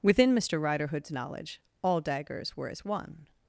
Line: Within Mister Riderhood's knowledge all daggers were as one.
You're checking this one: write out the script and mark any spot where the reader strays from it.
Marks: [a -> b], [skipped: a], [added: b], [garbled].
Within Mister Riderhood's knowledge all daggers were as one.